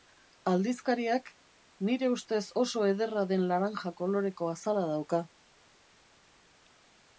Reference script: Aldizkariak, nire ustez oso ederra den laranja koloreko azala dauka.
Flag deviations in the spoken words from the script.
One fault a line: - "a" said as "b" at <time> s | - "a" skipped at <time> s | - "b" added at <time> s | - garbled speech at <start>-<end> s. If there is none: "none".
none